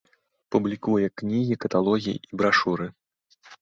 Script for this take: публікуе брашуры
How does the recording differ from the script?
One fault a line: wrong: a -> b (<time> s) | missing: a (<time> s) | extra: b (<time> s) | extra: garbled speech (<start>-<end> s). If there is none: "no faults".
extra: кнігі каталогі і (1.2 s)